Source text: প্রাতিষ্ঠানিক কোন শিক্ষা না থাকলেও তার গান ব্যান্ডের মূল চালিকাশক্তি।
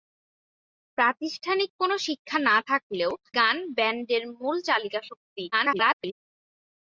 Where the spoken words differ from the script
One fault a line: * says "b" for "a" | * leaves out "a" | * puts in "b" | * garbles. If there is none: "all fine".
* leaves out "তার"
* garbles